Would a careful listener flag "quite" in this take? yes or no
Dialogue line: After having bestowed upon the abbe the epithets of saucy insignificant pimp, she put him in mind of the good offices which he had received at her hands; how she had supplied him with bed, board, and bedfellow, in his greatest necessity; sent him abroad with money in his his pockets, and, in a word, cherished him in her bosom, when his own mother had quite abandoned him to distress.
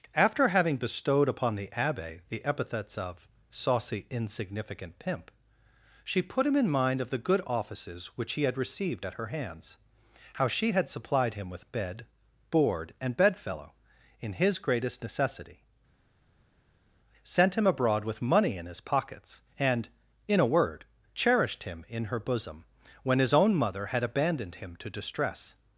yes